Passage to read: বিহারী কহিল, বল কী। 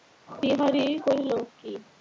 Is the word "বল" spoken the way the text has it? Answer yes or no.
no